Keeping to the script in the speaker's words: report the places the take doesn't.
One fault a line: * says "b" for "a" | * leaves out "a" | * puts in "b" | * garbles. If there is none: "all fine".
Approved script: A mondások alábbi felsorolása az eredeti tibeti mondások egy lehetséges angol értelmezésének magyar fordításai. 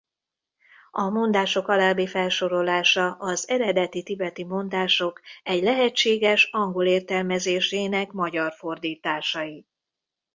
all fine